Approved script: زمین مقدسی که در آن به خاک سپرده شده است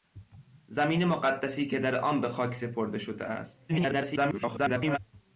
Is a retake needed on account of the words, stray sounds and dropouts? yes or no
yes